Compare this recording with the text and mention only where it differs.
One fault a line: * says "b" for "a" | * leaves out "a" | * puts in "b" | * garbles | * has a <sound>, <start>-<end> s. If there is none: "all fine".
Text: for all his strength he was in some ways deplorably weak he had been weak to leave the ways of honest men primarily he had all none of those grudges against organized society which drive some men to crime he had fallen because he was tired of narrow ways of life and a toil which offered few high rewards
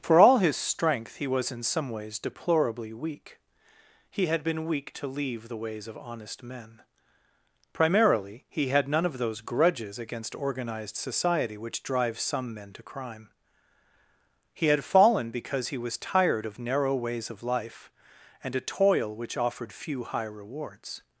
* leaves out "all"